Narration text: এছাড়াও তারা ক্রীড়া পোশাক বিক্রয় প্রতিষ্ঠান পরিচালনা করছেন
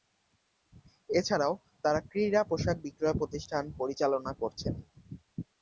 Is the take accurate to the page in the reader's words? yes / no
yes